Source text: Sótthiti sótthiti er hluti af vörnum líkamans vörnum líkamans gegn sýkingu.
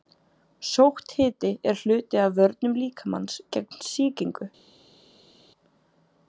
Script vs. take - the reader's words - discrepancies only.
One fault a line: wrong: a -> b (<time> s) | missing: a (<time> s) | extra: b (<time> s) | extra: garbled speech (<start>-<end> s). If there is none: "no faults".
missing: sótthiti (1.5 s)
missing: vörnum líkamans (3.4 s)